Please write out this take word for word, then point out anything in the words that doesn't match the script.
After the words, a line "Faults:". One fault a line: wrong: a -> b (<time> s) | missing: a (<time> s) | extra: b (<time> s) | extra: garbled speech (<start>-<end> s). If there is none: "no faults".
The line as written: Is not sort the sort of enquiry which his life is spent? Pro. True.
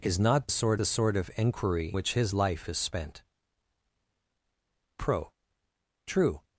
Is not sort the sort of enquiry which his life is spent? Pro. True.
Faults:
no faults